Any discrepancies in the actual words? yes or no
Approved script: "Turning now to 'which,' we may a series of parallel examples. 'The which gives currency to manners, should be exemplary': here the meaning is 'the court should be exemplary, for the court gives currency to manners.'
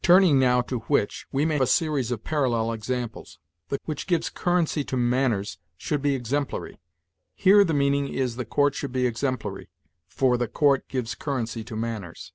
no